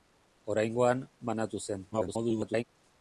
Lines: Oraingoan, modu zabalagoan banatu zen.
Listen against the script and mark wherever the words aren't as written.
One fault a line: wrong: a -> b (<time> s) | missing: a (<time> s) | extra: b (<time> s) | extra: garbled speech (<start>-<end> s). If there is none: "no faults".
missing: modu zabalagoan (1.0 s)
extra: garbled speech (1.9-2.6 s)